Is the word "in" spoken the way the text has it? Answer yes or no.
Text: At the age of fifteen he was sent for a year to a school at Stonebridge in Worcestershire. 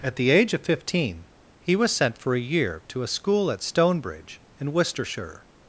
yes